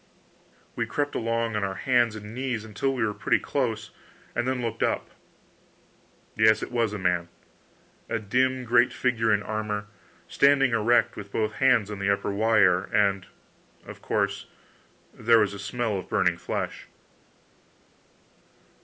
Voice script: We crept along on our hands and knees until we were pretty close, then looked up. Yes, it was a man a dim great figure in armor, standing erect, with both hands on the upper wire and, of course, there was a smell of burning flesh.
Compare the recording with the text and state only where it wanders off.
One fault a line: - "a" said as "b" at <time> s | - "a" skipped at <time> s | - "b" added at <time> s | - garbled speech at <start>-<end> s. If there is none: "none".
- "and" added at 4.3 s